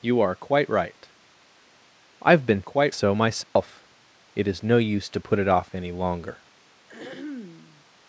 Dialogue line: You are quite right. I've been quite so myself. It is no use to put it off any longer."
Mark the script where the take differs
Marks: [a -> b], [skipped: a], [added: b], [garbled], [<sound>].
You are quite right. I've been quite so myself. [dropout] It is no use to put it off any longer." [throat clearing]